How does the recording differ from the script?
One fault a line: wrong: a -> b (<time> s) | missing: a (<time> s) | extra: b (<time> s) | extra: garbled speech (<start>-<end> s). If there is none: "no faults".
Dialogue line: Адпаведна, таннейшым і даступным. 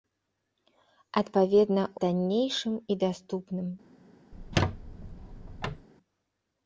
no faults